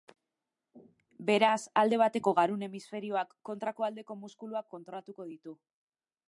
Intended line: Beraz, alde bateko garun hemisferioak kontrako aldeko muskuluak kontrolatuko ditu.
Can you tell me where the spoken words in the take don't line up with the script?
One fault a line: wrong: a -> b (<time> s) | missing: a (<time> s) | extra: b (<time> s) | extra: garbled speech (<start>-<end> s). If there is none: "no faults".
no faults